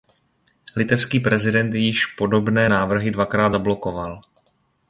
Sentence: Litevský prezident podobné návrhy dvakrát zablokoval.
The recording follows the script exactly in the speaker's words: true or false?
false